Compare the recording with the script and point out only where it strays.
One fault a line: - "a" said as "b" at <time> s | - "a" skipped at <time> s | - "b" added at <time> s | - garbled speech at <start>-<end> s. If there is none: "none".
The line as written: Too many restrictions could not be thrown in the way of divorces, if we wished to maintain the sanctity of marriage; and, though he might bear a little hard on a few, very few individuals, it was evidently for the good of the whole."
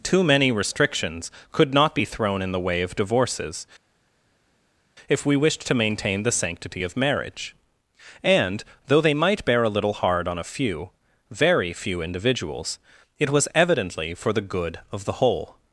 - "he" said as "they" at 9.0 s